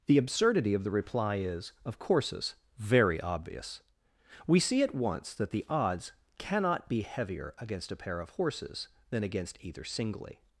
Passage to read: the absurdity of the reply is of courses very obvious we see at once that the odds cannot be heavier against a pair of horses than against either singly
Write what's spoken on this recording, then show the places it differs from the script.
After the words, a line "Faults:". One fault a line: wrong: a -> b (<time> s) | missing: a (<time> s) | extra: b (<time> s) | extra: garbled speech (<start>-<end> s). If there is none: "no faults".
the absurdity of the reply is of courses very obvious we see at once that the odds cannot be heavier against a pair of horses than against either singly
Faults:
no faults